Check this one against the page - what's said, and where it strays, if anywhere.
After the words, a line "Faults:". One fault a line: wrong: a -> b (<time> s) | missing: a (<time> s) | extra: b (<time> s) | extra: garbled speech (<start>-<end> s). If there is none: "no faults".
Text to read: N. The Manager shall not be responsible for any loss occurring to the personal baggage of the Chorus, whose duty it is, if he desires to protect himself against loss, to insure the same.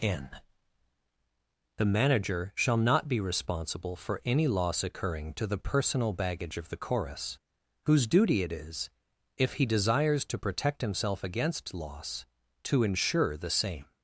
N. The Manager shall not be responsible for any loss occurring to the personal baggage of the Chorus, whose duty it is, if he desires to protect himself against loss, to insure the same.
Faults:
no faults